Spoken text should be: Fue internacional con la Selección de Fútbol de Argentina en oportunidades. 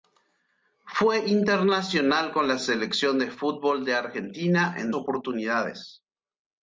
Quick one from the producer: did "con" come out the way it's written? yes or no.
yes